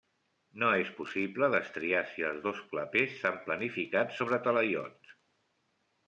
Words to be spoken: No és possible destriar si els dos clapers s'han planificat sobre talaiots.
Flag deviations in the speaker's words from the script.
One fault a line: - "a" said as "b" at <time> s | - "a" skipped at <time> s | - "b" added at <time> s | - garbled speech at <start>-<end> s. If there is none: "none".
none